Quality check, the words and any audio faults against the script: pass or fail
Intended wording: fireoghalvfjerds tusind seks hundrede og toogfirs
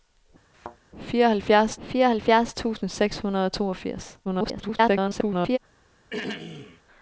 fail